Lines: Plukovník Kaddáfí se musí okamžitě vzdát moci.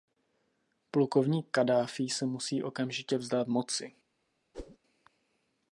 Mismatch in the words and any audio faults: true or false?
true